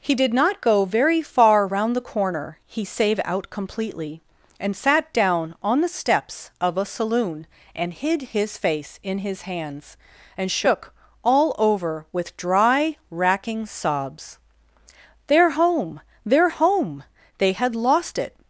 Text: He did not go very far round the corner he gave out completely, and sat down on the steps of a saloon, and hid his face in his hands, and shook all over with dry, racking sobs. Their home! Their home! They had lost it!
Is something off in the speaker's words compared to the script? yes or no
yes